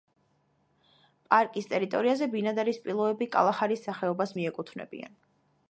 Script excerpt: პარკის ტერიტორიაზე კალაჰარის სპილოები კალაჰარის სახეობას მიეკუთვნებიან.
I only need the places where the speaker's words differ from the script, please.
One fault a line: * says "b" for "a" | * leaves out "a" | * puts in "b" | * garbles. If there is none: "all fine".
* says "ბინადარი" for "კალაჰარის"